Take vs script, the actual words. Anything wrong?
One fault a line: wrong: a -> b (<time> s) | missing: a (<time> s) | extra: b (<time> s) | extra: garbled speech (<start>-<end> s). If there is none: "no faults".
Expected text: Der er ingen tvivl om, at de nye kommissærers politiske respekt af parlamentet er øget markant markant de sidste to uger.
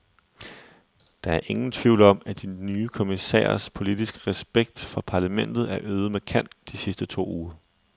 wrong: af -> for (4.8 s)
missing: markant (6.5 s)